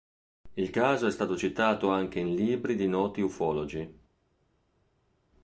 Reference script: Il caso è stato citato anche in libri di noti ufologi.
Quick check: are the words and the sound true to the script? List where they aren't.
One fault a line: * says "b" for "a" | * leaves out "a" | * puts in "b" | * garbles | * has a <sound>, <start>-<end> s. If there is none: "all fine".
all fine